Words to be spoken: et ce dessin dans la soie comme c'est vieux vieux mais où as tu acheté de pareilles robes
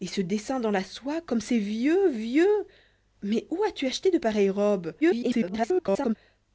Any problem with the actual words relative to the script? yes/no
yes